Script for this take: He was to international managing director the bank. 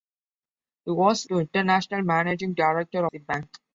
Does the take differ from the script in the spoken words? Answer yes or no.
no